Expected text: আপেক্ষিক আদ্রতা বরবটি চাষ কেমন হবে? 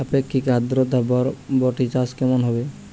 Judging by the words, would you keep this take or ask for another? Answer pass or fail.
pass